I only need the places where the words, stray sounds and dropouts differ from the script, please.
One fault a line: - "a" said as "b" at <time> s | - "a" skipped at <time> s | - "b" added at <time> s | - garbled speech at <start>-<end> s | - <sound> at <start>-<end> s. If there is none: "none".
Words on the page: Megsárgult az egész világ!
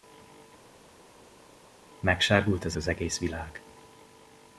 - "az" added at 2.8 s